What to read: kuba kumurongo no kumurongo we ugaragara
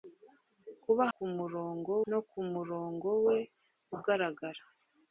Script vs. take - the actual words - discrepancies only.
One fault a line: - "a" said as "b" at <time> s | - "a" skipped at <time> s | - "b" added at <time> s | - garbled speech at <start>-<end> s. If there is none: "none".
none